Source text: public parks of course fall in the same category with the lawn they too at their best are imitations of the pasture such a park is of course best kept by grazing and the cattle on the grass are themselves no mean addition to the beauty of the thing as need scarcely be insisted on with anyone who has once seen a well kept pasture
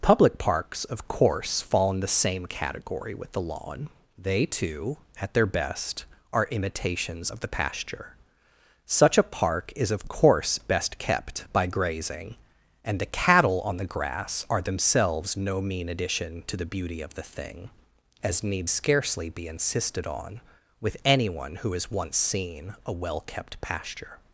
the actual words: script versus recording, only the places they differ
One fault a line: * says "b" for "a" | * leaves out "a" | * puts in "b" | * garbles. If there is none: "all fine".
all fine